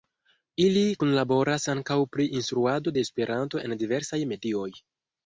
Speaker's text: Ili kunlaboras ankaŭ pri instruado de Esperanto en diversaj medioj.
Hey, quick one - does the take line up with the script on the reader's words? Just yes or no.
yes